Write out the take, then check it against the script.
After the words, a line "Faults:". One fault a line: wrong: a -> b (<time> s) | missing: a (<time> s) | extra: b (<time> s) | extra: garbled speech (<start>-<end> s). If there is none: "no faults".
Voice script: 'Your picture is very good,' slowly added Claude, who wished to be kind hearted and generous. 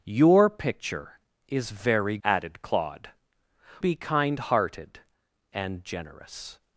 'Your picture is very added Claude, be kind hearted and generous.
Faults:
missing: good slowly (2.2 s)
missing: who wished to (3.1 s)